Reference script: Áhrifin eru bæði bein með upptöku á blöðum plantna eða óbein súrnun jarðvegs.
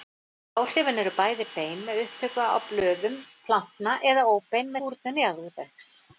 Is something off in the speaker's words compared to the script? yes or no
no